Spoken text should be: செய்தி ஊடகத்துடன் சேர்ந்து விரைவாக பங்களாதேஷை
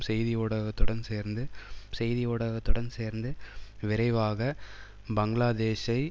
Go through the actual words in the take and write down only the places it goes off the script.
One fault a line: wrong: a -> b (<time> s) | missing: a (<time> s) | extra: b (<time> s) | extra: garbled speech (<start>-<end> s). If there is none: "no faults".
extra: செய்தி ஊடகத்துடன் சேர்ந்து (1.9 s)